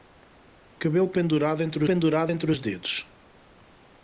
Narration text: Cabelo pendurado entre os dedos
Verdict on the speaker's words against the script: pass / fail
fail